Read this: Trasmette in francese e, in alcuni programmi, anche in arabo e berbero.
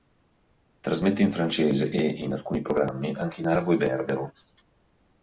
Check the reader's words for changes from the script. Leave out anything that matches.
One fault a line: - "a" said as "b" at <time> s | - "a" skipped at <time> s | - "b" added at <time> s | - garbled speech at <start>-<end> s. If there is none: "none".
none